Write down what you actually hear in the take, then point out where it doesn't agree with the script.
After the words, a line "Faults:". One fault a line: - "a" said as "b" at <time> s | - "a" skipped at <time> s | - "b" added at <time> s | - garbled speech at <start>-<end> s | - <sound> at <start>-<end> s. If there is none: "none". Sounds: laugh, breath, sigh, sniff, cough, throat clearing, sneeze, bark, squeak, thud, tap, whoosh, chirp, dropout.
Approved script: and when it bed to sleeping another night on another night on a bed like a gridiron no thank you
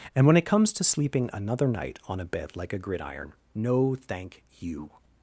and when it comes to sleeping another night on a bed like a gridiron no thank you
Faults:
- "bed" said as "comes" at 0.5 s
- "another night on" skipped at 2.2 s